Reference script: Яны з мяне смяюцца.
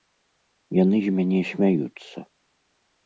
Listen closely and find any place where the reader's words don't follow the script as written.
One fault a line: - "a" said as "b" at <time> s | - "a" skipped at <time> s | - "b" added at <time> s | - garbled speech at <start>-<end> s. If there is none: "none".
none